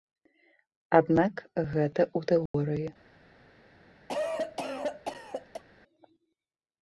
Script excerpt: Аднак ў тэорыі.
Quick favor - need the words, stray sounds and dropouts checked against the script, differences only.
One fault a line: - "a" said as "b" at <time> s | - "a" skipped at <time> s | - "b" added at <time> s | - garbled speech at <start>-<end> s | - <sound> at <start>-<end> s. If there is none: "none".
- "гэта" added at 1.7 s
- dropout at 2.5-2.5 s
- cough at 4.1-5.6 s